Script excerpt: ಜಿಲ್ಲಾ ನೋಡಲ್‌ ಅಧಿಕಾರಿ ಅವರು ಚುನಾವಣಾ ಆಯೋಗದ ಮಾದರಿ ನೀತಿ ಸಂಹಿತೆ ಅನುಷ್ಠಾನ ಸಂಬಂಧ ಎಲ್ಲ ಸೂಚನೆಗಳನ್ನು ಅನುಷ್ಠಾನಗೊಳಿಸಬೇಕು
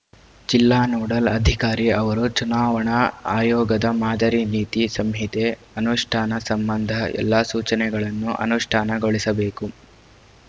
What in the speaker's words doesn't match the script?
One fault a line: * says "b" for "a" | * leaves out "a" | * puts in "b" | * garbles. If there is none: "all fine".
all fine